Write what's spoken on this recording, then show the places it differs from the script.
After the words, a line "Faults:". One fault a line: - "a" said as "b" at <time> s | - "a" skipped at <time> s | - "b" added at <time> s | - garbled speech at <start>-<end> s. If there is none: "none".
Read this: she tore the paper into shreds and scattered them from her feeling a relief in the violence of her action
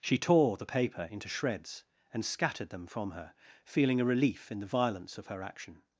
she tore the paper into shreds and scattered them from her feeling a relief in the violence of her action
Faults:
none